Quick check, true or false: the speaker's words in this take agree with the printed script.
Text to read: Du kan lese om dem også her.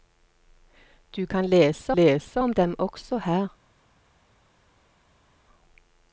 false